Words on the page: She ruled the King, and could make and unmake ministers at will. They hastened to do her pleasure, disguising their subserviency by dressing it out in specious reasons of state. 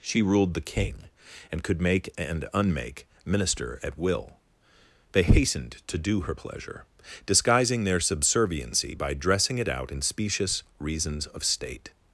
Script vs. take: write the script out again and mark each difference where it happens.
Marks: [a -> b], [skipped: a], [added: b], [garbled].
She ruled the King, and could make and unmake [ministers -> minister] at will. They hastened to do her pleasure, disguising their subserviency by dressing it out in specious reasons of state.